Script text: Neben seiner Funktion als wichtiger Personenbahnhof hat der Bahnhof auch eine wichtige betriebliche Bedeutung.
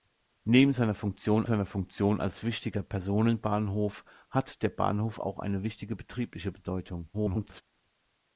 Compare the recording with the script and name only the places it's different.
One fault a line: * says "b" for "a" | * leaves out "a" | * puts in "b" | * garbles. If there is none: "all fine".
* puts in "seiner Funktion"
* garbles